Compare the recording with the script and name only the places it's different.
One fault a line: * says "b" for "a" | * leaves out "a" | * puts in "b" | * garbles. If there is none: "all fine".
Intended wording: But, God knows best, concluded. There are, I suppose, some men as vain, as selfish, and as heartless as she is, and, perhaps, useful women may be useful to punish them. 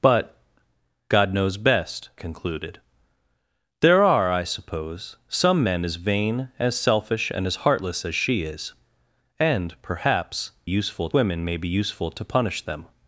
all fine